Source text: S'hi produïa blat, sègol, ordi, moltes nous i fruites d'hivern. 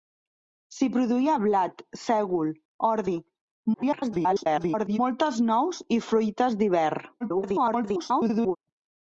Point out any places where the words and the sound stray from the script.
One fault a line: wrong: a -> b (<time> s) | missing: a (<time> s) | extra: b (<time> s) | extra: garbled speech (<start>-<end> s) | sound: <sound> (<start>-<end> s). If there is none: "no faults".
extra: garbled speech (3.7-5.0 s)
extra: garbled speech (7.2-8.6 s)